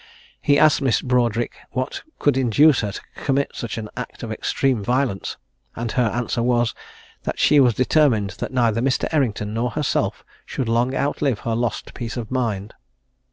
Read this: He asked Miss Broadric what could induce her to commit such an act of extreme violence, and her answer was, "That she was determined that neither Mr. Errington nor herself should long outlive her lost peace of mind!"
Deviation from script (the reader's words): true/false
false